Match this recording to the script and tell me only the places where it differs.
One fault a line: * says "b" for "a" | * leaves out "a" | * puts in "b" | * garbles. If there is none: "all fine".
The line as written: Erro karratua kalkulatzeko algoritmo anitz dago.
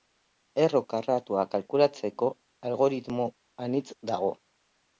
all fine